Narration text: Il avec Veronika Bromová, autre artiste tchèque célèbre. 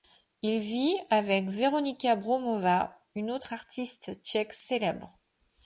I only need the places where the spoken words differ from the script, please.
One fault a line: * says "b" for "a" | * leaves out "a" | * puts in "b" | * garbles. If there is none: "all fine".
* puts in "vit"
* puts in "une"